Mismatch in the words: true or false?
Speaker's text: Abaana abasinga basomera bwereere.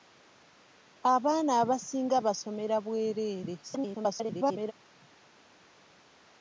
true